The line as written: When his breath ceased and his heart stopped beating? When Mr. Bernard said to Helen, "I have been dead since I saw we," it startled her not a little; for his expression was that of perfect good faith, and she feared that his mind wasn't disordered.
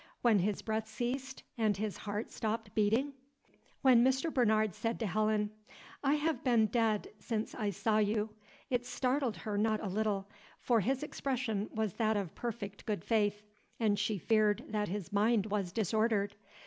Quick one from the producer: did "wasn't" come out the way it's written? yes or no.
no